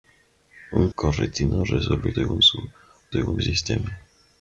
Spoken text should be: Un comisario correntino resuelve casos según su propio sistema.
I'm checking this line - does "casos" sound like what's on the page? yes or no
no